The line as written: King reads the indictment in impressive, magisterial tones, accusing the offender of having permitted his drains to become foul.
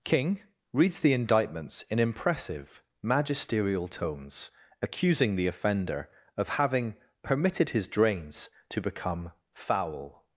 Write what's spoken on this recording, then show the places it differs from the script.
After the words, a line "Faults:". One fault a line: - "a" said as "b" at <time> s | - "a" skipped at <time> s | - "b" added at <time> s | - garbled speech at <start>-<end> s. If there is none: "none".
King reads the indictments in impressive, magisterial tones, accusing the offender of having permitted his drains to become foul.
Faults:
- "indictment" said as "indictments" at 1.1 s